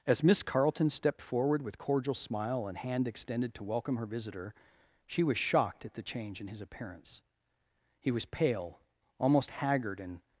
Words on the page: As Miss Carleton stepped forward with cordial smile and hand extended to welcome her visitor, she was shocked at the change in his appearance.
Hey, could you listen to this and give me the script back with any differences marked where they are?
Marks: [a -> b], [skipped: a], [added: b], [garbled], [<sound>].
As Miss Carleton stepped forward with cordial smile and hand extended to welcome her visitor, she was shocked at the change in his appearance. [added: He was pale almost haggard and]